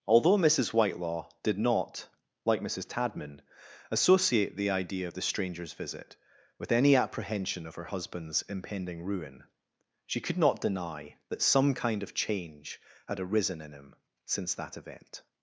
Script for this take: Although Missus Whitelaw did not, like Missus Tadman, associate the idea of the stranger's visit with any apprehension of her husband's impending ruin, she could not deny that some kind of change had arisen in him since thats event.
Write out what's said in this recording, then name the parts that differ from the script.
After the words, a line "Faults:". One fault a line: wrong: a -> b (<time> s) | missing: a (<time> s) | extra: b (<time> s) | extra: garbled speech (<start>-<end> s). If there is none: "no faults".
Although Missus Whitelaw did not, like Missus Tadman, associate the idea of the stranger's visit with any apprehension of her husband's impending ruin, she could not deny that some kind of change had arisen in him since that event.
Faults:
wrong: thats -> that (14.5 s)